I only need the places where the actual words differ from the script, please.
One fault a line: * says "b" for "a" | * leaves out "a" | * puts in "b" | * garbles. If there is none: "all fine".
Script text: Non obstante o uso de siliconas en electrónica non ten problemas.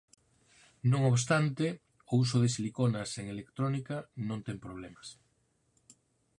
all fine